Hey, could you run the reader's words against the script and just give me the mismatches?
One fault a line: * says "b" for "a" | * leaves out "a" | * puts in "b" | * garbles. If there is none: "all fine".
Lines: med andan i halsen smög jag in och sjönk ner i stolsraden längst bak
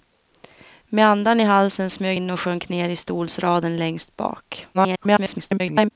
* leaves out "jag"
* garbles